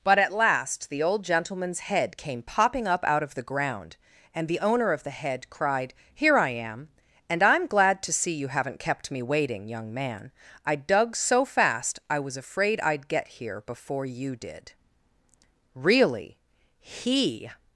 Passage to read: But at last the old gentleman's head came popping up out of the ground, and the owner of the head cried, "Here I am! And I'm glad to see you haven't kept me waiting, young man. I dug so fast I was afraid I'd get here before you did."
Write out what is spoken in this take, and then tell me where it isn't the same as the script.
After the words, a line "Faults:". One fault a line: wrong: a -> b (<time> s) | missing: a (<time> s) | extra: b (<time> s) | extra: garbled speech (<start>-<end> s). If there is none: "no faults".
But at last the old gentleman's head came popping up out of the ground, and the owner of the head cried, "Here I am! And I'm glad to see you haven't kept me waiting, young man. I dug so fast I was afraid I'd get here before you did." Really, he
Faults:
extra: Really he (15.8 s)